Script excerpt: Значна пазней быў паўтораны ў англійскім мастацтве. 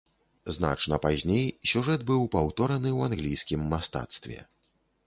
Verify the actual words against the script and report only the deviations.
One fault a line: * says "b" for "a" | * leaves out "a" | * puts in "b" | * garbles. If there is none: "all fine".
* puts in "сюжэт"